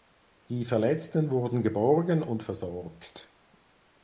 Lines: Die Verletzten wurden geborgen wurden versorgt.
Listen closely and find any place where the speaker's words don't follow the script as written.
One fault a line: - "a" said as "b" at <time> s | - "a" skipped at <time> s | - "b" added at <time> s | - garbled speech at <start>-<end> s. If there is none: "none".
- "wurden" said as "und" at 2.2 s